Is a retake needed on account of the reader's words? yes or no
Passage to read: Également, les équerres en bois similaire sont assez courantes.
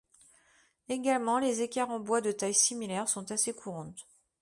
yes